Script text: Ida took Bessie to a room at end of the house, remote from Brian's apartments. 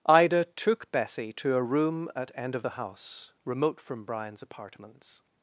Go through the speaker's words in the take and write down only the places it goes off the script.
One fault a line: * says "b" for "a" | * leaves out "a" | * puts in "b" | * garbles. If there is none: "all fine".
all fine